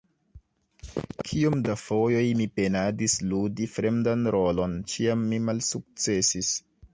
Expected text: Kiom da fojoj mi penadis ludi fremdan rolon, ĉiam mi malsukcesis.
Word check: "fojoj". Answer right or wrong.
right